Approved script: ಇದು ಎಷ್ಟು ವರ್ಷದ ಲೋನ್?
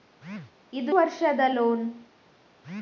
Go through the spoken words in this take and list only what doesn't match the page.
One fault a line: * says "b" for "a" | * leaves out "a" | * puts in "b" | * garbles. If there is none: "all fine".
* leaves out "ಎಷ್ಟು"